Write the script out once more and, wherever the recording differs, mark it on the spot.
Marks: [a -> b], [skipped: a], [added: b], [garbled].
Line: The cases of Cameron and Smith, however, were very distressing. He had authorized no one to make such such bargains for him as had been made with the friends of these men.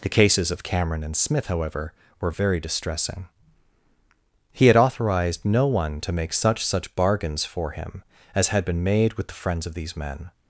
The cases of Cameron and Smith, however, were very distressing. He had authorized no one to make such such bargains for him as had been made with the friends of these men.